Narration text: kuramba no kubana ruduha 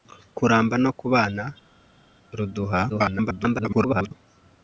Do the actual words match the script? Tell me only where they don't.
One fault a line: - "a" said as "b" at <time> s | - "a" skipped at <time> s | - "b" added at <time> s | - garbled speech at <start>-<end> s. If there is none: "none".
- garbled speech at 2.9-4.1 s